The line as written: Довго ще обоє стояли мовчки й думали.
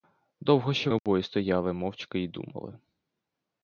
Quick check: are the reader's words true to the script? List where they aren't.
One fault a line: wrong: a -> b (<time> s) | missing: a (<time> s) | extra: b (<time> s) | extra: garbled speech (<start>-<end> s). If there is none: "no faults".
no faults